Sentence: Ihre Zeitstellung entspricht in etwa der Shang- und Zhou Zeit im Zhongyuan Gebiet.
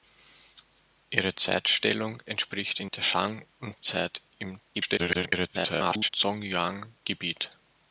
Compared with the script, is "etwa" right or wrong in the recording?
wrong